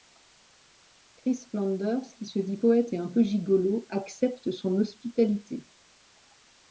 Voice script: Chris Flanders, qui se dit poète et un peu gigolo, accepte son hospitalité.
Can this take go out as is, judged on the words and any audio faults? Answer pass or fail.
pass